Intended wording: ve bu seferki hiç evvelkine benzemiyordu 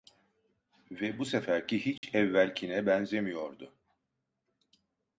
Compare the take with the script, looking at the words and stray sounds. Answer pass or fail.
fail